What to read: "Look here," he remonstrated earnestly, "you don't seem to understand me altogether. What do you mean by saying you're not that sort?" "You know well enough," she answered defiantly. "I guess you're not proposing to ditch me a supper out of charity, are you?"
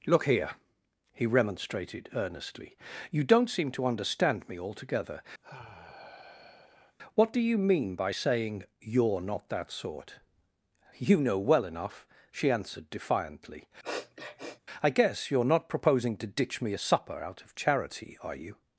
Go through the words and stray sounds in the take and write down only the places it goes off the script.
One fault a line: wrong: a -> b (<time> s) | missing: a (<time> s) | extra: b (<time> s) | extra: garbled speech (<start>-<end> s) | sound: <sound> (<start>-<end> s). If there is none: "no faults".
sound: sigh (5.4-7.0 s)
sound: sniff (13.8-14.6 s)